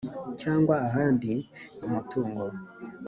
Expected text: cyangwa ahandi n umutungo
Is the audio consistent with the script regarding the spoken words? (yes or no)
yes